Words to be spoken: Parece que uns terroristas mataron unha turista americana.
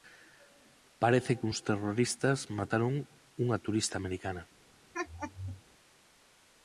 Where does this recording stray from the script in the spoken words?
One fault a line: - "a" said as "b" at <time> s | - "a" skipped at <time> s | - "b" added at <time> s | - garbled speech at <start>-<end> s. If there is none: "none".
none